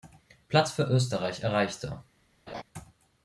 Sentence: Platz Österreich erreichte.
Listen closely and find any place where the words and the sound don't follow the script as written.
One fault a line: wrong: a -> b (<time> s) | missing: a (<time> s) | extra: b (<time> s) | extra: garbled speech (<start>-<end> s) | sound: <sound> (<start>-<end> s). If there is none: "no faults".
extra: für (0.7 s)
sound: laugh (2.5-2.6 s)